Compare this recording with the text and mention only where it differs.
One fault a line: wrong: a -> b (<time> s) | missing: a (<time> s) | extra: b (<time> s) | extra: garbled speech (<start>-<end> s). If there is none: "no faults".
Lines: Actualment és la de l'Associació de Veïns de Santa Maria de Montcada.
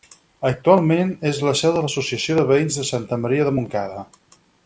extra: seu (1.6 s)